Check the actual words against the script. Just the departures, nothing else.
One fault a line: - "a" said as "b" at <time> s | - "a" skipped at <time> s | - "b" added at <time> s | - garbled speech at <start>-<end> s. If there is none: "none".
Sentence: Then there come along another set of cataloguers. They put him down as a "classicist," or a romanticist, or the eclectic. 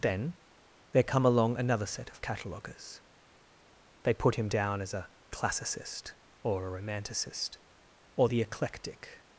none